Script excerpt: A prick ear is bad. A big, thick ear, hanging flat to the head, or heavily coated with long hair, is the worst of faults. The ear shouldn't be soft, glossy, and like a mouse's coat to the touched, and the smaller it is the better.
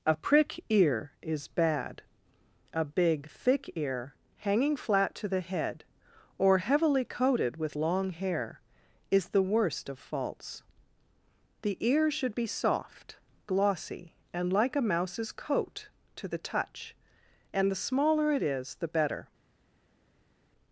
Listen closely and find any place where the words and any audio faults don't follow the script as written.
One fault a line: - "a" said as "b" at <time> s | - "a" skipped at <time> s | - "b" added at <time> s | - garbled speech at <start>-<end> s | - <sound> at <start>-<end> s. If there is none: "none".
- "shouldn't" said as "should" at 12.1 s
- "touched" said as "touch" at 16.4 s